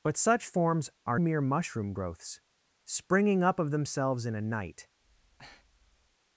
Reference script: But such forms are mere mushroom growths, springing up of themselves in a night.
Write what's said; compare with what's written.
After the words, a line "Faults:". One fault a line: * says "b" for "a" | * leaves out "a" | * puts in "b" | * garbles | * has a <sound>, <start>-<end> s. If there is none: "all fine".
But such forms are mere mushroom growths, springing up of themselves in a night.
Faults:
* has a breath, 5.0-6.2 s